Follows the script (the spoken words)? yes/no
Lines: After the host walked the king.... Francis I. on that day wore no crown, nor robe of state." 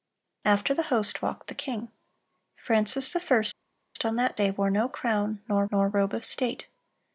no